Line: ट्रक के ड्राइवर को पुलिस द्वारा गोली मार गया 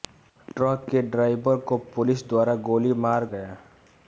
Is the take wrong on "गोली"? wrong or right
right